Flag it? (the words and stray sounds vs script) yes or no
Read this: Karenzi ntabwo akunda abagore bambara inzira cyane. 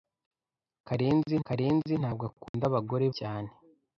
yes